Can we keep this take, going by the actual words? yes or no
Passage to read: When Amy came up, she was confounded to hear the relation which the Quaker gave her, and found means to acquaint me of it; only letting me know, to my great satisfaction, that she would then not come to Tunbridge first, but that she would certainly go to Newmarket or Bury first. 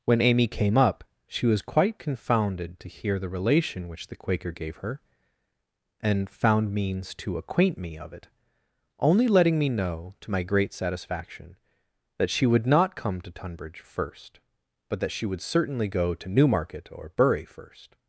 no